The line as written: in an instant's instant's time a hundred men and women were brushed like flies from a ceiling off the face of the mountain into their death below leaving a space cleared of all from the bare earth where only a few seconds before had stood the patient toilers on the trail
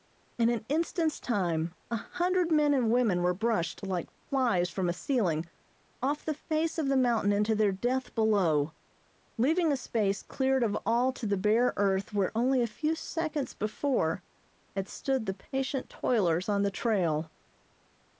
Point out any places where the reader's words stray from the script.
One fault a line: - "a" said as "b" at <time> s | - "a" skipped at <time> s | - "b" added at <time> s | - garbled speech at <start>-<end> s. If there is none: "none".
- "instant's" skipped at 1.2 s
- "from" said as "to" at 11.1 s